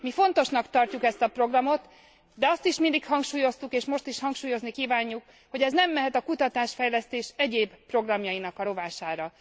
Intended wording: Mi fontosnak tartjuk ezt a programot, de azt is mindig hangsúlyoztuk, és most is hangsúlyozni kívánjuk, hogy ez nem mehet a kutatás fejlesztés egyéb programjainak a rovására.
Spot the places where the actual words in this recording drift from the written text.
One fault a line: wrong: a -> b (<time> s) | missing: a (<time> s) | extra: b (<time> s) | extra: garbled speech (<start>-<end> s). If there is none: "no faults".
no faults